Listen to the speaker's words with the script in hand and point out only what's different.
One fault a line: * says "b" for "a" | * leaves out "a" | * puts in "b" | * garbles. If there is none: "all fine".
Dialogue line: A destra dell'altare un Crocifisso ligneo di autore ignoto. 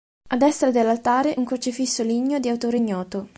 all fine